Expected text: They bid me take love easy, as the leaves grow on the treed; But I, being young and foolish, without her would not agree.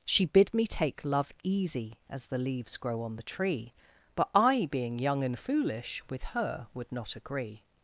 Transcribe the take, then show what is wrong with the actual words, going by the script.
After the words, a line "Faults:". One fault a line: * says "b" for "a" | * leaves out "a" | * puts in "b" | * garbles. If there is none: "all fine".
She bid me take love easy, as the leaves grow on the tree; But I, being young and foolish, with her would not agree.
Faults:
* says "She" for "They"
* says "tree" for "treed"
* says "with" for "without"